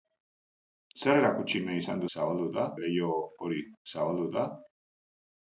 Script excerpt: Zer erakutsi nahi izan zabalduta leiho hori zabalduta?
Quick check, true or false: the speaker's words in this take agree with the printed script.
true